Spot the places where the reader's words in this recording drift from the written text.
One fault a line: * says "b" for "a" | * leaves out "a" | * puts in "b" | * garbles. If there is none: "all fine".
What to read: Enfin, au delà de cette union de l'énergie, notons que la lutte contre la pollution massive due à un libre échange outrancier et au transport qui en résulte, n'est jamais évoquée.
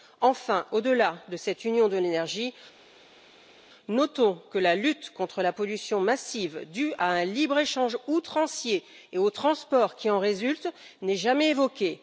all fine